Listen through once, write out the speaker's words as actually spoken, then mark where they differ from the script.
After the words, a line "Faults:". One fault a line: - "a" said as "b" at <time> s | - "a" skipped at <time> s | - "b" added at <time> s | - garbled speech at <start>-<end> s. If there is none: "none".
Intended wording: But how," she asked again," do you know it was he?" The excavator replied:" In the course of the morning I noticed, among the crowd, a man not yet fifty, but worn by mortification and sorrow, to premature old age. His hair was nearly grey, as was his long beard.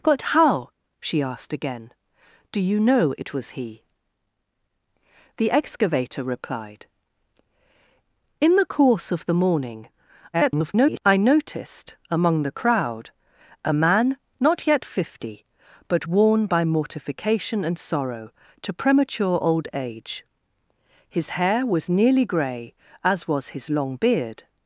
But how," she asked again," do you know it was he?" The excavator replied:" In the course of the morning [garbled] I noticed, among the crowd, a man not yet fifty, but worn by mortification and sorrow, to premature old age. His hair was nearly grey, as was his long beard.
Faults:
- garbled speech at 10.3-11.0 s